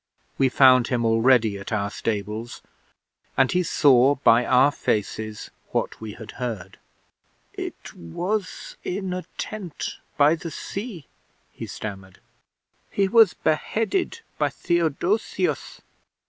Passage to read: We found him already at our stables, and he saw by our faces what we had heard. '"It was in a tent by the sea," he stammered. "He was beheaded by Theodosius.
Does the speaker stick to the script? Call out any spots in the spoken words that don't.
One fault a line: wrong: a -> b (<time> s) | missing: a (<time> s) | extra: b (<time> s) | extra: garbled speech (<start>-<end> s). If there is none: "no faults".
no faults